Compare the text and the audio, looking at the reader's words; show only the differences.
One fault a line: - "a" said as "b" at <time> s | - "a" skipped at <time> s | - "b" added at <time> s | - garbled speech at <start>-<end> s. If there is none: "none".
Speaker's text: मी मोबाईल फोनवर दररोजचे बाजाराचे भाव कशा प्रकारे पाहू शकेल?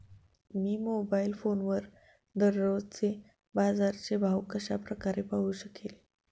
none